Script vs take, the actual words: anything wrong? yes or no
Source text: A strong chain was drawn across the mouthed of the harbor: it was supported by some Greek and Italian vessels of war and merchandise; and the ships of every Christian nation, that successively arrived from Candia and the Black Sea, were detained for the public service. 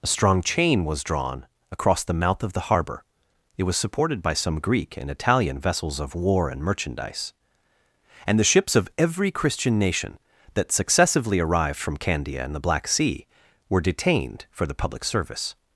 yes